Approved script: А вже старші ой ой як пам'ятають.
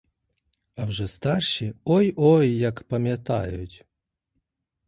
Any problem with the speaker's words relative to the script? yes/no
no